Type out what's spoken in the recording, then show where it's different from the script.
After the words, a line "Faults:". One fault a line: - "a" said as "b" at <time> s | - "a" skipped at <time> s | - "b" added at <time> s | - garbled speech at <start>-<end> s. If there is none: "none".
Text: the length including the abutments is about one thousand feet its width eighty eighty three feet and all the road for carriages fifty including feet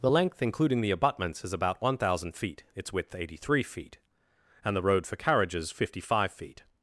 the length including the abutments is about one thousand feet its width eighty three feet and the road for carriages fifty five feet
Faults:
- "eighty" skipped at 3.3 s
- "all" skipped at 4.7 s
- "including" said as "five" at 6.0 s